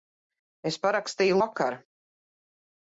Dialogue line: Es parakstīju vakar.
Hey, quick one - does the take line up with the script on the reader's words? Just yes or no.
yes